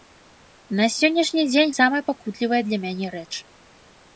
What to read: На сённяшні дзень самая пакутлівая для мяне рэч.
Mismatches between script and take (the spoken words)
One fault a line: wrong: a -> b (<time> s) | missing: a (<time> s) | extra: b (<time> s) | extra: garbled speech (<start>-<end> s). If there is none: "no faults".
no faults